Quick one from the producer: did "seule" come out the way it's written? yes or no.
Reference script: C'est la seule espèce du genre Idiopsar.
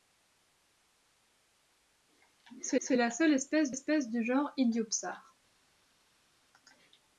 yes